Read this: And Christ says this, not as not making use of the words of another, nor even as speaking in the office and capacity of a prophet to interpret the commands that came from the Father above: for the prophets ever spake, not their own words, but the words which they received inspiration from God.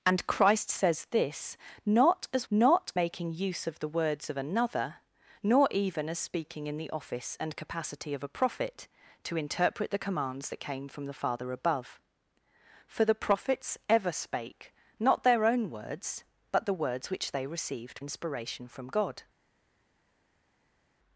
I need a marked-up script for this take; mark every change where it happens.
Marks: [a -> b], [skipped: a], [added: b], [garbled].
And Christ says this, not as not making use of the words of another, nor even as speaking in the office and capacity of a prophet to interpret the commands that came from the Father above: for the prophets ever spake, not their own words, but the words which they received inspiration from God.